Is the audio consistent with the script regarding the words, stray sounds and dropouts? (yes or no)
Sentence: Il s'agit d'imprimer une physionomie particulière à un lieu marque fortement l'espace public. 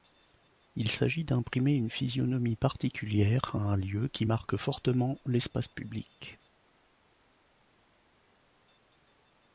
no